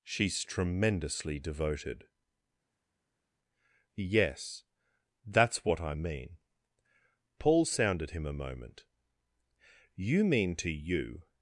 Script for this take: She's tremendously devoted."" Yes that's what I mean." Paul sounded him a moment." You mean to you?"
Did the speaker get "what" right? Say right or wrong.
right